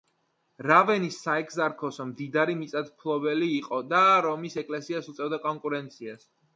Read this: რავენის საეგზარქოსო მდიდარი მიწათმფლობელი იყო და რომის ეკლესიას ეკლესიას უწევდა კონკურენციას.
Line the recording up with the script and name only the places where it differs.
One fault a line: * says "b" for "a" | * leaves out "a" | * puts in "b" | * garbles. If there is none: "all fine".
* leaves out "ეკლესიას"